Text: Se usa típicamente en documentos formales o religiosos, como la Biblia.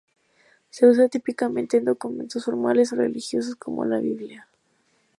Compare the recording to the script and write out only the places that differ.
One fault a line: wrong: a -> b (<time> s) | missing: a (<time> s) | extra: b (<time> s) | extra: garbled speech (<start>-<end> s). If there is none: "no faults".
no faults